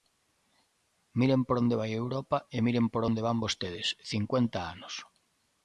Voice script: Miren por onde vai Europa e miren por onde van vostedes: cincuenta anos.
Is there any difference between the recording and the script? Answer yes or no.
no